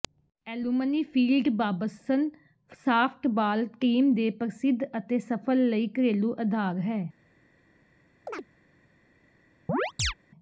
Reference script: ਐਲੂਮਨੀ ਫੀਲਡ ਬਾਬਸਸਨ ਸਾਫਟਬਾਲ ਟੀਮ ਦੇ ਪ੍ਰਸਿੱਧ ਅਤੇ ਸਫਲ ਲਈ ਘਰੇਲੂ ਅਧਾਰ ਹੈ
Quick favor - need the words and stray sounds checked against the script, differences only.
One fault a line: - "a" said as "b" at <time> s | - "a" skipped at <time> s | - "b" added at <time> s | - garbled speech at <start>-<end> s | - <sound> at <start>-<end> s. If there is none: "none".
- chirp at 8.3-8.5 s
- chirp at 9.7-10.1 s